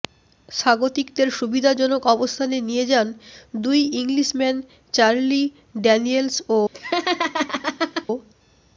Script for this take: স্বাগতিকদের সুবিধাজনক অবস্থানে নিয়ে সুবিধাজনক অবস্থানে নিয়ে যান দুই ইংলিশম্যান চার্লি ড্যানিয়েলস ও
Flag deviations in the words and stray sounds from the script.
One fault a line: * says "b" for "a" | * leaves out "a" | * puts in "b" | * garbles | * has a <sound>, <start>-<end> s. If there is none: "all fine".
* leaves out "সুবিধাজনক অবস্থানে নিয়ে"
* has a laugh, 6.7-8.1 s